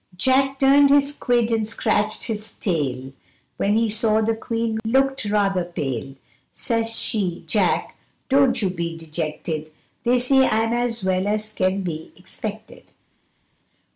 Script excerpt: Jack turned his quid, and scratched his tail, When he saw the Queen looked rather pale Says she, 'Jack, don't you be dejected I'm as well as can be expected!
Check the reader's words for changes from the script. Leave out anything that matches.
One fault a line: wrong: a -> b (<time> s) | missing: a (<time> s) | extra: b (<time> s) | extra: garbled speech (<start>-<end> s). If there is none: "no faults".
extra: They say (10.0 s)